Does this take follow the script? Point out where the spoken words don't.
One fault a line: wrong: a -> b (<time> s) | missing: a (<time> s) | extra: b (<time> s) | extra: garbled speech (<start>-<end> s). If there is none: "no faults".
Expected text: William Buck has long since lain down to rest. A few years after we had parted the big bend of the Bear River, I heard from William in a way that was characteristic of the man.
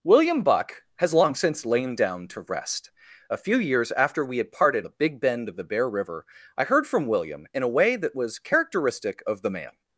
no faults